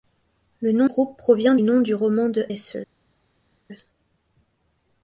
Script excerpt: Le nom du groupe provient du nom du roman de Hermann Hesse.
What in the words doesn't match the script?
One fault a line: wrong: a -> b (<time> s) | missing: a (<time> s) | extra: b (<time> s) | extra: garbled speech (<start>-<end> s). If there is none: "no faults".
missing: du (0.9 s)
missing: du (1.6 s)
missing: Hermann (2.5 s)